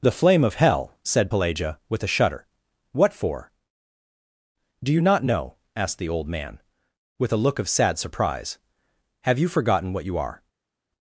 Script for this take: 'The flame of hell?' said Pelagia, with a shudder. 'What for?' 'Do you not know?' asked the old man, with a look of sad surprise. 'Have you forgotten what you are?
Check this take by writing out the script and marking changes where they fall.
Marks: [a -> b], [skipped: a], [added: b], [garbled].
'The flame of hell?' said Pelagia, with a shudder. 'What for?' 'Do you not know?' asked the old man, with a look of sad surprise. 'Have you forgotten what you are?